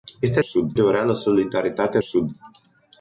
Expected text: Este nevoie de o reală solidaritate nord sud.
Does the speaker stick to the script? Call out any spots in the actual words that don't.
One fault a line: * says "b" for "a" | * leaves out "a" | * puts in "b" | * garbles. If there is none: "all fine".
* says "sud" for "nevoie"
* leaves out "nord"